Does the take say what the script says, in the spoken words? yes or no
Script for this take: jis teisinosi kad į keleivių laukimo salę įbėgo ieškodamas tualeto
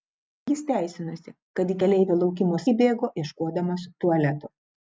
no